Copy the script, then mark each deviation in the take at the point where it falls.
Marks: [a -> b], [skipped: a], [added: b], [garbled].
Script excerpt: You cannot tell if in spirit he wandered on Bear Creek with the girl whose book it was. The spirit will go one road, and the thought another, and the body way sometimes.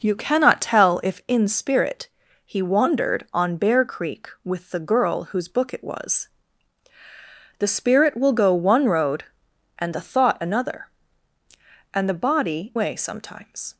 You cannot tell if in spirit he wandered on Bear Creek with the girl whose book it was. The spirit will go one road, and the thought another, and the body way sometimes.